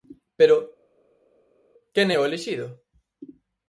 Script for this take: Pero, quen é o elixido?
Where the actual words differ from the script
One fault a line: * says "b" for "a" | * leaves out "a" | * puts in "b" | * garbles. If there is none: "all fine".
all fine